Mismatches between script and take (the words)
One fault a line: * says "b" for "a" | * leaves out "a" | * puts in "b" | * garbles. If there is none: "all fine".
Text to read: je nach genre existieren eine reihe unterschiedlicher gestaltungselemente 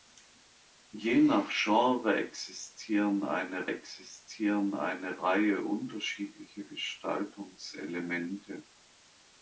* puts in "existieren eine"